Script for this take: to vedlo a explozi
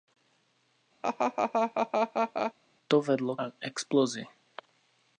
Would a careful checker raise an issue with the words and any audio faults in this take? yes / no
yes